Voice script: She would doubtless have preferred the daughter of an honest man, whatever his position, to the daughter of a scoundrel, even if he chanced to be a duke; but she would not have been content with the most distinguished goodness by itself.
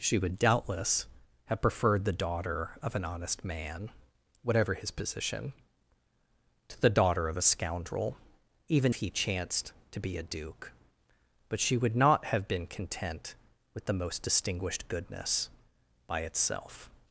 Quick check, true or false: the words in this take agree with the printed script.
false